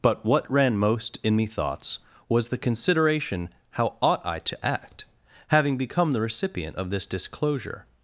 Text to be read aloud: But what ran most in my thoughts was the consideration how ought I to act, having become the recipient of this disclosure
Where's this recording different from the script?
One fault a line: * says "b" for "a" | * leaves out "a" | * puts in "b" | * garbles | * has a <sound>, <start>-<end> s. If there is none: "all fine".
* says "me" for "my"